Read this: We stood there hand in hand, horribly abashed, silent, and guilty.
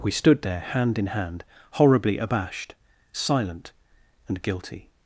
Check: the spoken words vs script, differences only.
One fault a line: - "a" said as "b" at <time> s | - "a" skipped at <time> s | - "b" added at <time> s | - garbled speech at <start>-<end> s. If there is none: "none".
none